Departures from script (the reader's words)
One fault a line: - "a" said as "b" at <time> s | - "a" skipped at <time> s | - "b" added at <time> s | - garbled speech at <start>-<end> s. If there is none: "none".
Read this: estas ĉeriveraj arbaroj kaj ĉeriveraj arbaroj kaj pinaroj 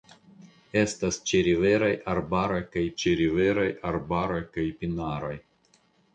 none